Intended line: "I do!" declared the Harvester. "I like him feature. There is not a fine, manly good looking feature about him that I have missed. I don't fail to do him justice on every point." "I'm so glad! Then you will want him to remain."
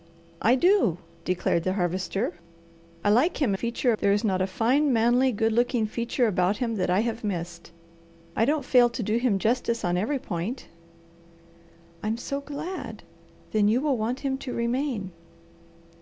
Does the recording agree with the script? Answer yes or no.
yes